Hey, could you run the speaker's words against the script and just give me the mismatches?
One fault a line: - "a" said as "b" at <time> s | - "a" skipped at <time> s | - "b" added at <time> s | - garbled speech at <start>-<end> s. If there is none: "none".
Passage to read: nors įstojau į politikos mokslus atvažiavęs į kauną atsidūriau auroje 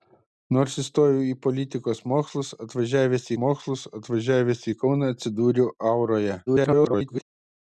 - "mokslus atvažiavęs" added at 3.4 s
- garbled speech at 6.5-7.2 s